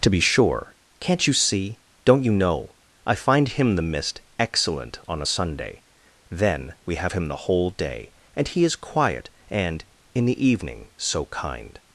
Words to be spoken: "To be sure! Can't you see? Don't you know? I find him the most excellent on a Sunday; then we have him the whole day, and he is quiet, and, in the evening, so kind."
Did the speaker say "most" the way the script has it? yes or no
no